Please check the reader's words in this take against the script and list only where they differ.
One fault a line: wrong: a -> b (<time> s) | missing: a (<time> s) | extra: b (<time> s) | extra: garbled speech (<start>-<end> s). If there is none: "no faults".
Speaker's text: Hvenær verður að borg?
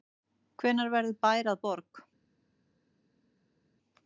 extra: bær (1.3 s)